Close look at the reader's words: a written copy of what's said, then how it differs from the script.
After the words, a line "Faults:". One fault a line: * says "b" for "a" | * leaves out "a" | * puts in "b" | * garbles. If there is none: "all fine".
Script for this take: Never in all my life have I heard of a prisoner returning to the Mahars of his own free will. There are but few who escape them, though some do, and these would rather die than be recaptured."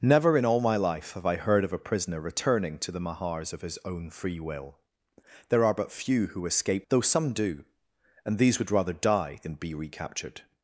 Never in all my life have I heard of a prisoner returning to the Mahars of his own free will. There are but few who escape though some do, and these would rather die than be recaptured."
Faults:
* leaves out "them"